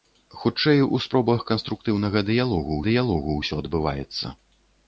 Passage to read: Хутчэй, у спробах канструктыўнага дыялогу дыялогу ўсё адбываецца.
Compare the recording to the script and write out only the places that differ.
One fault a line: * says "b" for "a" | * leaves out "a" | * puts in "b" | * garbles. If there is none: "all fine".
all fine